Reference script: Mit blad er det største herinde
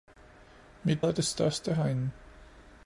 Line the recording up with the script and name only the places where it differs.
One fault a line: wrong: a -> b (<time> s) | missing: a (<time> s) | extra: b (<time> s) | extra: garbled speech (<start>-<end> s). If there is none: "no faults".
missing: blad (1.0 s)